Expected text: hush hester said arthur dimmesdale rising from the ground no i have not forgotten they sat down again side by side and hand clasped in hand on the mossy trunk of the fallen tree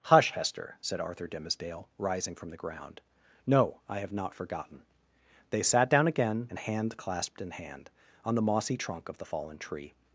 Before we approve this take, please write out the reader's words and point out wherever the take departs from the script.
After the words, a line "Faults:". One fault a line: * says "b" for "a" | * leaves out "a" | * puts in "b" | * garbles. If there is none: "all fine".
hush hester said arthur dimmesdale rising from the ground no i have not forgotten they sat down again and hand clasped in hand on the mossy trunk of the fallen tree
Faults:
* leaves out "side by side"